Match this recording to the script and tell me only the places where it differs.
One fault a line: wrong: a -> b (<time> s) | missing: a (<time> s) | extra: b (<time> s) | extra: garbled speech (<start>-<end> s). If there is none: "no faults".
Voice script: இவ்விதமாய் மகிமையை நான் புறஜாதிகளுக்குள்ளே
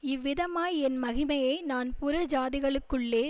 extra: என் (0.8 s)